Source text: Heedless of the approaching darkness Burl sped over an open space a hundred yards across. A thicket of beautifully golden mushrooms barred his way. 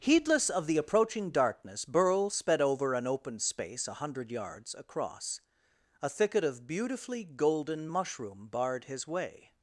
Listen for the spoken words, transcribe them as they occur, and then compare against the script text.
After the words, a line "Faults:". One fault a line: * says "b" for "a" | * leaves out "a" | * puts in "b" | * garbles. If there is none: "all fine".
Heedless of the approaching darkness Burl sped over an open space a hundred yards across. A thicket of beautifully golden mushroom barred his way.
Faults:
* says "mushroom" for "mushrooms"